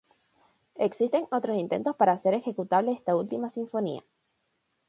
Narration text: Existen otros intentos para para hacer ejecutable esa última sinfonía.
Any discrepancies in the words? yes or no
yes